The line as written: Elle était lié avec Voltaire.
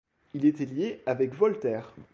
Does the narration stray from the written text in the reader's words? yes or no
yes